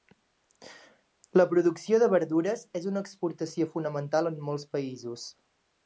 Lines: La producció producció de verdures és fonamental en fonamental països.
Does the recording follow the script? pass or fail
fail